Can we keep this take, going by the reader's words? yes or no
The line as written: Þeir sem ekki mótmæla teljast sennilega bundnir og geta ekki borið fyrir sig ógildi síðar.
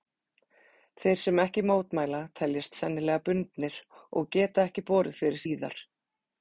no